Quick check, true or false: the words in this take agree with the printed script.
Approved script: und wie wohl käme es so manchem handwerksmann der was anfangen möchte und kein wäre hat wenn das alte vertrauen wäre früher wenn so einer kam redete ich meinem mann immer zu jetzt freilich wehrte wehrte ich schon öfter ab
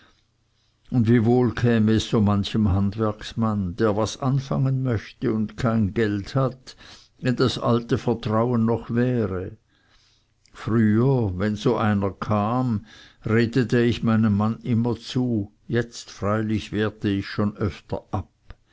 false